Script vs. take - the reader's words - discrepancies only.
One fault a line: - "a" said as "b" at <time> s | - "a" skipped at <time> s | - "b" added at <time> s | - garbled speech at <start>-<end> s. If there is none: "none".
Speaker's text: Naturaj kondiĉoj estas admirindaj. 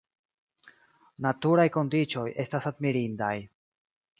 none